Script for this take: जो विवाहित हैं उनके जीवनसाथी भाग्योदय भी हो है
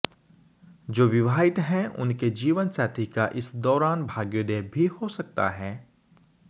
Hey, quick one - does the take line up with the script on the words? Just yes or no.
no